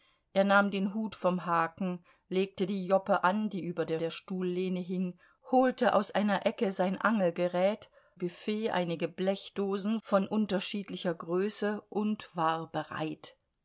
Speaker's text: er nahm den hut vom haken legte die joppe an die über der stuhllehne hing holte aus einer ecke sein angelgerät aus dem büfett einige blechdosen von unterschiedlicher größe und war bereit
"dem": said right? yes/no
no